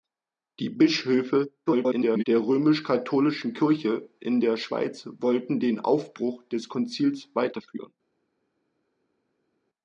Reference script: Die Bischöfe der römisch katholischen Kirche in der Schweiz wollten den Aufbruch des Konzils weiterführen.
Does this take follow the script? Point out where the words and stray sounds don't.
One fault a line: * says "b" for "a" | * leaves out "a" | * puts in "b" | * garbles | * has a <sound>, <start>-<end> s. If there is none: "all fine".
* garbles